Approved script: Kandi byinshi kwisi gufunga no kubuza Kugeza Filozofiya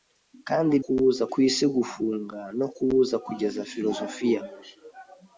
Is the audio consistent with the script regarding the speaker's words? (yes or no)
no